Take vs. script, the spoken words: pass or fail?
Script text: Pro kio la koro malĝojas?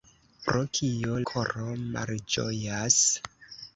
fail